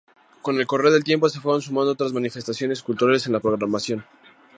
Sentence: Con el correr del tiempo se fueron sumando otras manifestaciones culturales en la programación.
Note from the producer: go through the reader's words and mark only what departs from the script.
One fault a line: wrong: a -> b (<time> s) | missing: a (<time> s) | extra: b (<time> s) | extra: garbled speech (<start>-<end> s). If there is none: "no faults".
no faults